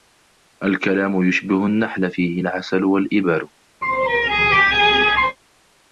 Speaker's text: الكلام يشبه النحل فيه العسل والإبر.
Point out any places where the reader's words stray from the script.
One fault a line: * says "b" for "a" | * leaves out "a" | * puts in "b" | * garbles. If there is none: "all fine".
all fine